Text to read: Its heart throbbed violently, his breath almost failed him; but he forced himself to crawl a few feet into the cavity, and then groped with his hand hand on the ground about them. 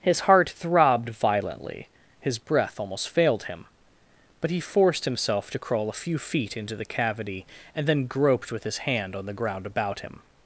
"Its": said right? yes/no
no